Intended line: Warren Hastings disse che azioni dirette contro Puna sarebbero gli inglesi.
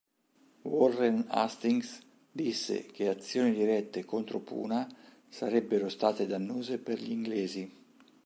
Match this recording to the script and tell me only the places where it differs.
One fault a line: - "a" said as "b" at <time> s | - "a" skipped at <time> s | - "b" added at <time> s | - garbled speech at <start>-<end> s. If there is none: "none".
- "state dannose per" added at 5.9 s